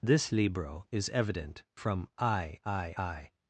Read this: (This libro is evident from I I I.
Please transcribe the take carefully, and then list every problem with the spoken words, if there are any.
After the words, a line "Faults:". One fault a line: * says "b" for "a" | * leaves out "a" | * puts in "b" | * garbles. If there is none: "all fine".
(This libro is evident from I I I.
Faults:
all fine